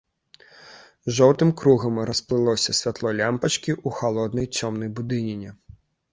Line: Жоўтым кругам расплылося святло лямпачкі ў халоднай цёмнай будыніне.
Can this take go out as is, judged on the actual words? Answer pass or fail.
pass